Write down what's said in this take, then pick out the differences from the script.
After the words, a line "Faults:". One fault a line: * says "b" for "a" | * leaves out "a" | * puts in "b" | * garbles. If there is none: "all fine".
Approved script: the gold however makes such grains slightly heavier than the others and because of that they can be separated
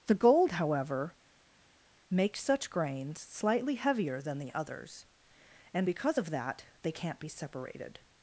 the gold however makes such grains slightly heavier than the others and because of that they can't be separated
Faults:
* says "can't" for "can"